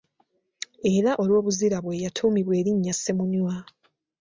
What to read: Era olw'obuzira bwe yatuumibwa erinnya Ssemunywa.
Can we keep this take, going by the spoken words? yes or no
yes